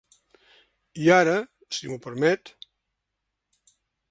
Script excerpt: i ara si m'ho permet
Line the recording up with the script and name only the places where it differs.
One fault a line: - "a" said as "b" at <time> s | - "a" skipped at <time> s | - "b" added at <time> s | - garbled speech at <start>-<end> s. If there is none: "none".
none